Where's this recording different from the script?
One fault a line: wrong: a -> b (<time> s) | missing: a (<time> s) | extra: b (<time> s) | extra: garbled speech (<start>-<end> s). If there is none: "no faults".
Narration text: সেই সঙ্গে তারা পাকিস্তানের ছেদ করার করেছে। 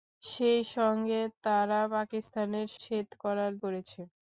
no faults